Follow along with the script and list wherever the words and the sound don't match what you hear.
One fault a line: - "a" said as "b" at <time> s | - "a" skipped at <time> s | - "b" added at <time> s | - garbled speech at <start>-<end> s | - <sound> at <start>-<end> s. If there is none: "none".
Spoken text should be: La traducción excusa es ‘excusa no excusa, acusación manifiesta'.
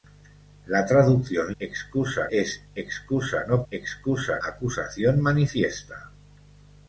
none